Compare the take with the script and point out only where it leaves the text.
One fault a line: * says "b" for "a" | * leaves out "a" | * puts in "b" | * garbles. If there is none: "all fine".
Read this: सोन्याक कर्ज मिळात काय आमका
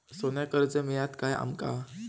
all fine